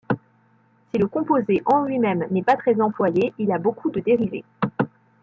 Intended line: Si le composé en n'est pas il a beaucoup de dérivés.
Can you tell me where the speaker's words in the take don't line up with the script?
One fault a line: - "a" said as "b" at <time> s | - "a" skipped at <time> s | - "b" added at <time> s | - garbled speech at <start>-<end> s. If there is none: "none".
- "lui même" added at 1.8 s
- "très employé" added at 2.5 s